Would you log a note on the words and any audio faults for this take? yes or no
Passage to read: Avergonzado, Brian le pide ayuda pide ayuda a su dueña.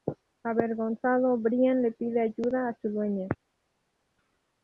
yes